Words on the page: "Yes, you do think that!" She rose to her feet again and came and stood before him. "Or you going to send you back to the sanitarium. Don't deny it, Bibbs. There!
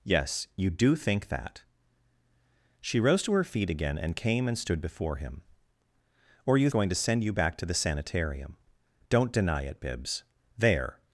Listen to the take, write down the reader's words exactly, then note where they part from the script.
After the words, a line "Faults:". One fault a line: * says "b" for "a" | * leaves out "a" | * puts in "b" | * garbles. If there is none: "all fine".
"Yes, you do think that!" She rose to her feet again and came and stood before him. "Or you going to send you back to the sanitarium. Don't deny it, Bibbs. There!
Faults:
all fine